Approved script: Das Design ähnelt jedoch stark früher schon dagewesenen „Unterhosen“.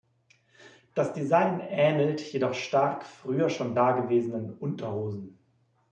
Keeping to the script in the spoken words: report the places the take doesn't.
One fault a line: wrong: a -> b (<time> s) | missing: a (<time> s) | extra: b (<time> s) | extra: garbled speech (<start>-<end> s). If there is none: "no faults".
no faults